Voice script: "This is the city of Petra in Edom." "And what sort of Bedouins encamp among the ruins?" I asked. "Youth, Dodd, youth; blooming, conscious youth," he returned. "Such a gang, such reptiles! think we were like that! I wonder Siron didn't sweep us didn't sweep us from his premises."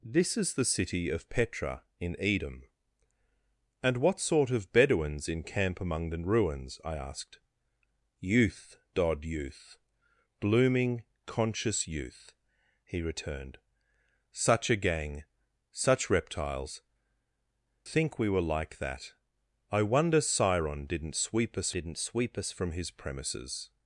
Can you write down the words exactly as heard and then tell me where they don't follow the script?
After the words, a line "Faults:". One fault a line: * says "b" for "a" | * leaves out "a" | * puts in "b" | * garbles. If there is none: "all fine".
"This is the city of Petra in Edom." "And what sort of Bedouins encamp among the ruins?" I asked. "Youth, Dodd, youth; blooming, conscious youth," he returned. "Such a gang, such reptiles! think we were like that! I wonder Siron didn't sweep us didn't sweep us from his premises."
Faults:
all fine